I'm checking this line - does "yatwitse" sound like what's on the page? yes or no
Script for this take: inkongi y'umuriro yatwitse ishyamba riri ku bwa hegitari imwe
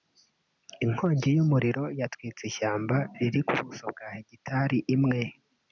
yes